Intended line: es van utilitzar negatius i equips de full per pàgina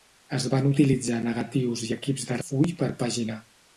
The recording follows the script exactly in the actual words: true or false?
true